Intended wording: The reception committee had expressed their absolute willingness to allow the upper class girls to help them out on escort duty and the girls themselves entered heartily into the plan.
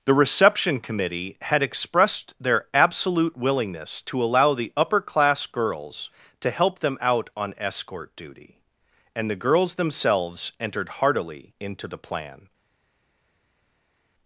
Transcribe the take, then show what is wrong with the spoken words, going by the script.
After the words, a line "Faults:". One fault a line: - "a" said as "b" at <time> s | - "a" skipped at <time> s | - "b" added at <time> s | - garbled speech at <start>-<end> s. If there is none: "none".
The reception committee had expressed their absolute willingness to allow the upper class girls to help them out on escort duty and the girls themselves entered heartily into the plan.
Faults:
none